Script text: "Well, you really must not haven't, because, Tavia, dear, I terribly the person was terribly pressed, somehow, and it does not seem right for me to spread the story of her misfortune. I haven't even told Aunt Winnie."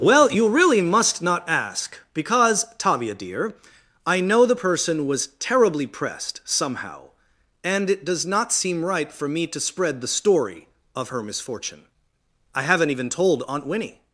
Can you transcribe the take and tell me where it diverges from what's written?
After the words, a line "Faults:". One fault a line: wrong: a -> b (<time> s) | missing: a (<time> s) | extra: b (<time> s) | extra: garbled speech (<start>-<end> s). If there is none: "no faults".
"Well, you really must not ask, because, Tavia, dear, I know the person was terribly pressed, somehow, and it does not seem right for me to spread the story of her misfortune. I haven't even told Aunt Winnie."
Faults:
wrong: haven't -> ask (1.5 s)
wrong: terribly -> know (4.2 s)